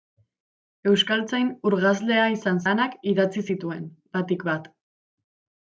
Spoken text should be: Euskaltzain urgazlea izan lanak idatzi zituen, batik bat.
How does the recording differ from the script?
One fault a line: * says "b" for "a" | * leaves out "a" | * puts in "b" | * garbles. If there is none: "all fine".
all fine